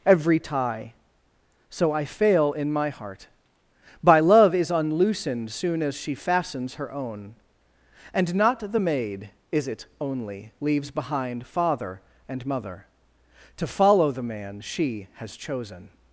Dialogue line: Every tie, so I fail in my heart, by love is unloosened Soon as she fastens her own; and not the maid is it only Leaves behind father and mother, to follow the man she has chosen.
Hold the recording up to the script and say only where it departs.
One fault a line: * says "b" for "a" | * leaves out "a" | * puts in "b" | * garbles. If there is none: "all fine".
all fine